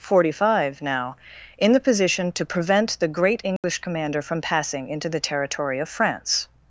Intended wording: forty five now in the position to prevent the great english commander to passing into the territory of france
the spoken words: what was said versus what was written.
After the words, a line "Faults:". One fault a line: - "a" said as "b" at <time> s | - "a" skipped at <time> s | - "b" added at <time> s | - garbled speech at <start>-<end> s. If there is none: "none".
forty five now in the position to prevent the great english commander from passing into the territory of france
Faults:
- "to" said as "from" at 4.2 s